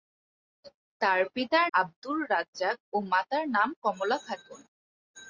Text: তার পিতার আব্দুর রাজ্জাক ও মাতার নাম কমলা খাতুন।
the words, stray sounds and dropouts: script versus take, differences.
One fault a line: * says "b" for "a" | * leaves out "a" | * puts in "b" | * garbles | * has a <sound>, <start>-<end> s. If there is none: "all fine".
all fine